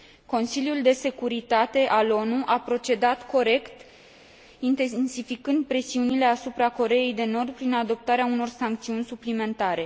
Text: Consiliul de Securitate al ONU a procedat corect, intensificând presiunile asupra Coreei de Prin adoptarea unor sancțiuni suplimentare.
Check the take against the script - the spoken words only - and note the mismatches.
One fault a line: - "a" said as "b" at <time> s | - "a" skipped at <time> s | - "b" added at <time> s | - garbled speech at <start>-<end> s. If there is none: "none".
- "Nord" added at 7.2 s